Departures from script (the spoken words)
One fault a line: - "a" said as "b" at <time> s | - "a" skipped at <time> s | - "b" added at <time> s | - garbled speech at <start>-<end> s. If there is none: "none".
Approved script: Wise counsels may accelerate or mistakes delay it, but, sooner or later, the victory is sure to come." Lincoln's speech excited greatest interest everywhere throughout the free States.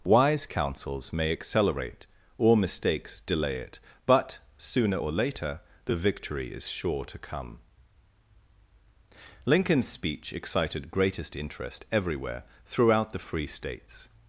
none